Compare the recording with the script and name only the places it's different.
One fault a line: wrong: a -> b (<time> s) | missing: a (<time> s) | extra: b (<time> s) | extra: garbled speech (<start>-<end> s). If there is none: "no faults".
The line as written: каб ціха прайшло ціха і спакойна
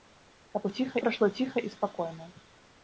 no faults